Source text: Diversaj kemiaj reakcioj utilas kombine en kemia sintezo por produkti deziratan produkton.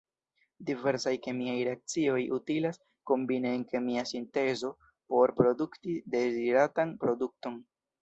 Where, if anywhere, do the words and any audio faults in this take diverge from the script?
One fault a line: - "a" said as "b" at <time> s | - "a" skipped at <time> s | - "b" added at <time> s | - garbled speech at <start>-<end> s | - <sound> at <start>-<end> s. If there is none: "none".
none